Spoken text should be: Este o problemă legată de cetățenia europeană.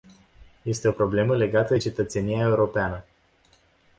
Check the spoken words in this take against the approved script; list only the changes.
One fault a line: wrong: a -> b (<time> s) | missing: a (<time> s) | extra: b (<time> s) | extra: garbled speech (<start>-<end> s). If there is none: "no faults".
no faults